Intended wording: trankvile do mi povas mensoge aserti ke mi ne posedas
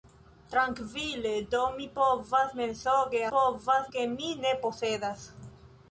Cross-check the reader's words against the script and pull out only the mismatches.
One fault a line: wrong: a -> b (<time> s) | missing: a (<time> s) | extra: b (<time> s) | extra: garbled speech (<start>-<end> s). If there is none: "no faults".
wrong: aserti -> povas (3.3 s)